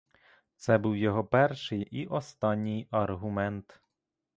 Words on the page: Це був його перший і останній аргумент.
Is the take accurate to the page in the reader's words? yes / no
yes